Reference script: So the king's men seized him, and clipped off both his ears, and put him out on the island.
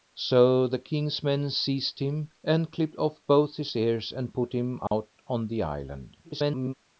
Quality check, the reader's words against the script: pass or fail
fail